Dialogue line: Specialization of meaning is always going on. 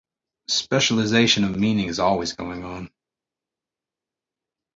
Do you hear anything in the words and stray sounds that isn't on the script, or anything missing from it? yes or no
no